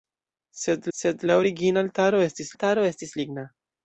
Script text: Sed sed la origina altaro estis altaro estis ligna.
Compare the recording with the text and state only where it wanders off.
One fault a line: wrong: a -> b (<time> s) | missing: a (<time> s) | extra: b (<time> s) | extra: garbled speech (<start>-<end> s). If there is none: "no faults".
no faults